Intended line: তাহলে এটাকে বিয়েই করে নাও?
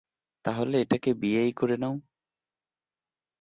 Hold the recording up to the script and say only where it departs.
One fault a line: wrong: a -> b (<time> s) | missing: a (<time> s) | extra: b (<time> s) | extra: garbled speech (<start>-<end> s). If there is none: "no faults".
no faults